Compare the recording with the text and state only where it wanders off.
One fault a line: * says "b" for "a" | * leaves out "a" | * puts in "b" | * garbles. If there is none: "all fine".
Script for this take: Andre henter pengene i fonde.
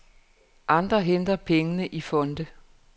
all fine